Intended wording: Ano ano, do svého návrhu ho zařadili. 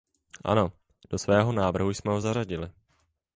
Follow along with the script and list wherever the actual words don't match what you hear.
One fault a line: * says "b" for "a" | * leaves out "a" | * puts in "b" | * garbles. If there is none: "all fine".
* leaves out "ano"
* puts in "jsme"